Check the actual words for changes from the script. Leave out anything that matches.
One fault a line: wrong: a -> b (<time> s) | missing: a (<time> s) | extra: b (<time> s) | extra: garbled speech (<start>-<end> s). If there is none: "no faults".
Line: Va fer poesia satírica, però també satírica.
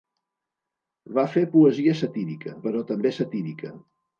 no faults